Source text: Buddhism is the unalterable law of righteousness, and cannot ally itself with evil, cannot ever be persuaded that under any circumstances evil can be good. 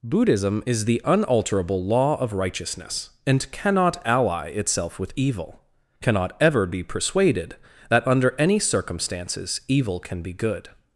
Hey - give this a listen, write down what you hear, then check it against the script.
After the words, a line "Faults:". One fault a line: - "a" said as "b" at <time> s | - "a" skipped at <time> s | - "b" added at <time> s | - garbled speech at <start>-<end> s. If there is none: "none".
Buddhism is the unalterable law of righteousness, and cannot ally itself with evil, cannot ever be persuaded that under any circumstances evil can be good.
Faults:
none